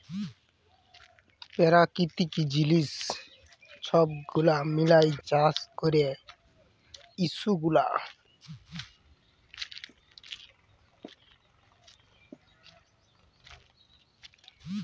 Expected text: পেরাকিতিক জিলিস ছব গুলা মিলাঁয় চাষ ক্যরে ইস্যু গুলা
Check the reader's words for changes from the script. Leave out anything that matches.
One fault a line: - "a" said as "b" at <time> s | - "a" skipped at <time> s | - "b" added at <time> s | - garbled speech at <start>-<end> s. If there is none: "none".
none